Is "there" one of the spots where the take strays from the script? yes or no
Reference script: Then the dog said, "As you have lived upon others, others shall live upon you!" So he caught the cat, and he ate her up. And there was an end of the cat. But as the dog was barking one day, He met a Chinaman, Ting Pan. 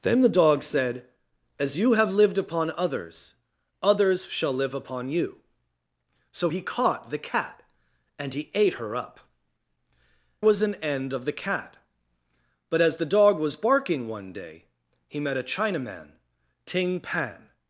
yes